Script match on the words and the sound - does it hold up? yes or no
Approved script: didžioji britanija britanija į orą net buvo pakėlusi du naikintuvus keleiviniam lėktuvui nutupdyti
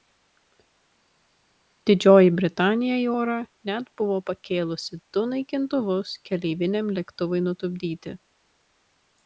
no